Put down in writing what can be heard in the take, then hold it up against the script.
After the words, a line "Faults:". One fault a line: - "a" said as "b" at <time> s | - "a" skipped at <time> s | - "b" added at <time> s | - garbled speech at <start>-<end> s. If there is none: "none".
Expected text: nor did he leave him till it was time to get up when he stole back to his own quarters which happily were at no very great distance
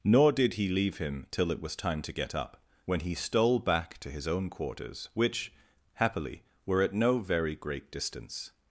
nor did he leave him till it was time to get up when he stole back to his own quarters which happily were at no very great distance
Faults:
none